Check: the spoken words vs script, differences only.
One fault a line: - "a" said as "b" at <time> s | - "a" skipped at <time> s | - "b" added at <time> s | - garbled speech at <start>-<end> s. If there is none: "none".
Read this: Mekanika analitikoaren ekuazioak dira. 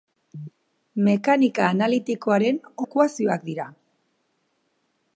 none